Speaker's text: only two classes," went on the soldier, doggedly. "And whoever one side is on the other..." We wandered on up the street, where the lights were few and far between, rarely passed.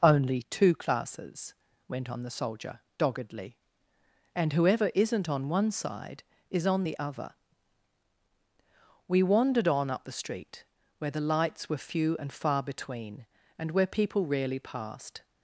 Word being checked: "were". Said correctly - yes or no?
yes